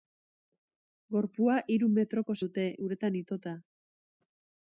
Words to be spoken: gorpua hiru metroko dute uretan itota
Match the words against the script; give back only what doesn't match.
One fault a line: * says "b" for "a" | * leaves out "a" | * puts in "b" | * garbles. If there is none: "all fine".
all fine